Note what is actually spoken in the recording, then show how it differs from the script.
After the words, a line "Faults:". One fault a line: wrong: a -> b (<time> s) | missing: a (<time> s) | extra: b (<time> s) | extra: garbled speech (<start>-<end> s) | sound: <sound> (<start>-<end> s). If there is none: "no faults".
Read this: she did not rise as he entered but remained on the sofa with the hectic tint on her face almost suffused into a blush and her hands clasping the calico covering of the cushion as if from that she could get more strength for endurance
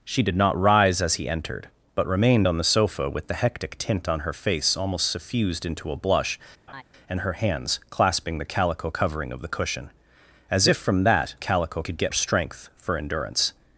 she did not rise as he entered but remained on the sofa with the hectic tint on her face almost suffused into a blush and her hands clasping the calico covering of the cushion as if from that calico could get strength for endurance
Faults:
sound: laugh (6.7-6.8 s)
wrong: she -> calico (11.4 s)
missing: more (12.1 s)